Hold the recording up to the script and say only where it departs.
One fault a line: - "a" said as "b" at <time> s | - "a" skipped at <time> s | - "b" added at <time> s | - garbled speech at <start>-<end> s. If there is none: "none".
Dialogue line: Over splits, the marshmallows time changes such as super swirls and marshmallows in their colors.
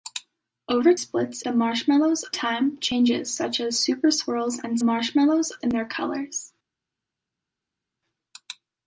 none